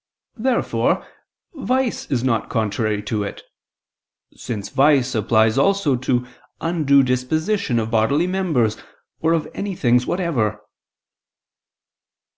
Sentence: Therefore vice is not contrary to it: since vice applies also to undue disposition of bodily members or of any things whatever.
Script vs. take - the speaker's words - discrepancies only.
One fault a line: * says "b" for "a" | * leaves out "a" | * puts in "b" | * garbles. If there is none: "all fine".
all fine